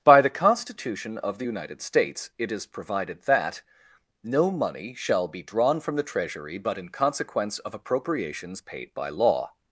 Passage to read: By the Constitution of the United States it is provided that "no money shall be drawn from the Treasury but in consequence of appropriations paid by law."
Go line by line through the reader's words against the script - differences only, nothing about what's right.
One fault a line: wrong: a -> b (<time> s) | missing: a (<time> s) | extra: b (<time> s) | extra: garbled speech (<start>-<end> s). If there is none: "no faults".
no faults